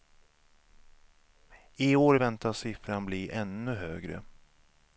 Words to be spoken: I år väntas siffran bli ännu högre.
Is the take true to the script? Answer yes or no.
yes